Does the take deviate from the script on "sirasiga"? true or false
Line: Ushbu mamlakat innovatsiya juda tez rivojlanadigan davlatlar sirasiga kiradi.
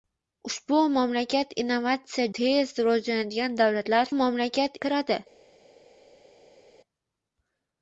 true